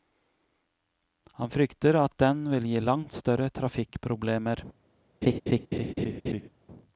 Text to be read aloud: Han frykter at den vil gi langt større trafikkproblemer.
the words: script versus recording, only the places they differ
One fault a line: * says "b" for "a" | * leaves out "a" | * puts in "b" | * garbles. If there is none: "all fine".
all fine